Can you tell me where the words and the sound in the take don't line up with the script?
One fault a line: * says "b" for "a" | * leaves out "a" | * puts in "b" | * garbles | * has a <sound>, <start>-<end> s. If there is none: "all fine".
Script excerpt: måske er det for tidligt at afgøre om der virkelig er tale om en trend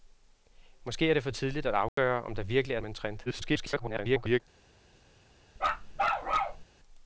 * has a dropout, 1.9-2.0 s
* leaves out "tale"
* garbles
* has a bark, 5.6-6.6 s